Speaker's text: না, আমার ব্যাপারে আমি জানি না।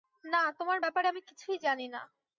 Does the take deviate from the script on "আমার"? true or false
true